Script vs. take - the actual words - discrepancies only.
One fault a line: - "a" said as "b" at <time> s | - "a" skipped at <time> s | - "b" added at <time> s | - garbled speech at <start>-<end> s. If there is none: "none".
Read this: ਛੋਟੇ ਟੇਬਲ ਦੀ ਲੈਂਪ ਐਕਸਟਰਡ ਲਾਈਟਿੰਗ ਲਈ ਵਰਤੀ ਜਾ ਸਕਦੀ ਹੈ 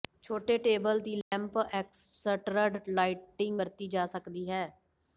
- "ਲਈ" skipped at 3.6 s